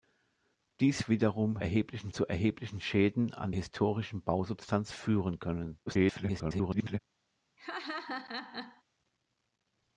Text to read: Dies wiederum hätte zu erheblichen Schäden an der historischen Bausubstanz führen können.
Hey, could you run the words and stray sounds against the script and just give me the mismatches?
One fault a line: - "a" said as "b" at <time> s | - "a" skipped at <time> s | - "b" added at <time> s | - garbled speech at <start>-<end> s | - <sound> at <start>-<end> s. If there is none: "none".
- "hätte" said as "erheblichen" at 1.6 s
- "der" skipped at 3.5 s
- garbled speech at 5.9-7.0 s
- laugh at 7.6-8.8 s